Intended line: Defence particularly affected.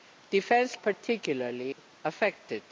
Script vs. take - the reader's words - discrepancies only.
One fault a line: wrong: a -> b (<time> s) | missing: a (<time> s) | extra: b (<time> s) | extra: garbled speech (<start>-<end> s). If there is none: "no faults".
no faults